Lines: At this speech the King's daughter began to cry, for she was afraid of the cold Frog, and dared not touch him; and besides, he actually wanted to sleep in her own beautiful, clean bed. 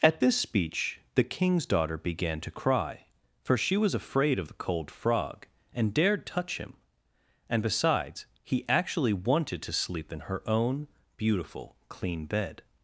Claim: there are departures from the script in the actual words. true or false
true